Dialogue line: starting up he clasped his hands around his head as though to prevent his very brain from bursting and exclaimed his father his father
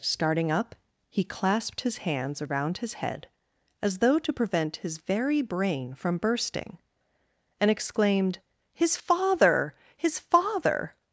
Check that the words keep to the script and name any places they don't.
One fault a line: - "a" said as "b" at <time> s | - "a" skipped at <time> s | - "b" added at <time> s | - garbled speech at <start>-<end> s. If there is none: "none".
none